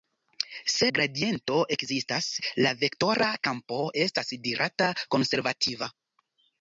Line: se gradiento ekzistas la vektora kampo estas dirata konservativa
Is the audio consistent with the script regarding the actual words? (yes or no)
yes